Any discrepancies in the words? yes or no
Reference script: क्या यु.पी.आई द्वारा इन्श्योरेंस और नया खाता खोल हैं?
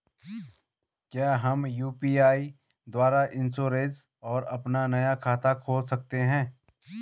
yes